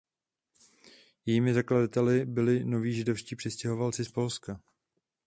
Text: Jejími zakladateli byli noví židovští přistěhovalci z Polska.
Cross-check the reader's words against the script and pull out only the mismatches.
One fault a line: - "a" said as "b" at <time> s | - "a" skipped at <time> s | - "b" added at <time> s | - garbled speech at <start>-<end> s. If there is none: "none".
none